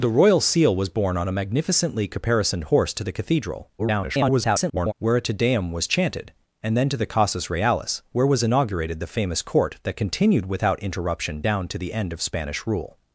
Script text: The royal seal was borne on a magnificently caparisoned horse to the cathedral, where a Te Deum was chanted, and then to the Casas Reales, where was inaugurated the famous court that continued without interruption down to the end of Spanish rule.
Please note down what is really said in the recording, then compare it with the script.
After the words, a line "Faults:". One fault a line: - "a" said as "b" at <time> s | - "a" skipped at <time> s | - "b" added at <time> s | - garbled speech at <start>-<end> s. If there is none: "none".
The royal seal was borne on a magnificently caparisoned horse to the cathedral, [garbled] where a Te Deum was chanted, and then to the Casas Reales, where was inaugurated the famous court that continued without interruption down to the end of Spanish rule.
Faults:
- garbled speech at 3.8-4.9 s